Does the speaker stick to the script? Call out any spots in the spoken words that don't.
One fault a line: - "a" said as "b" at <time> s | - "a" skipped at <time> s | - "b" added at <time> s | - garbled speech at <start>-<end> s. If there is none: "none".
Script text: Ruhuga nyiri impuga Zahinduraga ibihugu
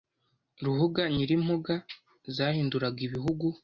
none